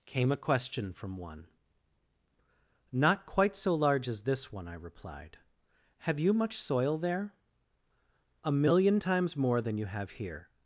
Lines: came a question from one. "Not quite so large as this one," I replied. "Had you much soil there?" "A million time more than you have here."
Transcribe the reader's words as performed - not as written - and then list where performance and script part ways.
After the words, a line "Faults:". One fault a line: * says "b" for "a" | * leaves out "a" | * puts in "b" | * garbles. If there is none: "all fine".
came a question from one. "Not quite so large as this one," I replied. "Have you much soil there?" "A million times more than you have here."
Faults:
* says "Have" for "Had"
* says "times" for "time"